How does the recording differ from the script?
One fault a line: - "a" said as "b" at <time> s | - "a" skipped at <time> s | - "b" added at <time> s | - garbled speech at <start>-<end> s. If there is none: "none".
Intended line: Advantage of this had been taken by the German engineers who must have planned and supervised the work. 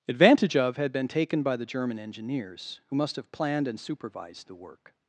- "this" skipped at 0.8 s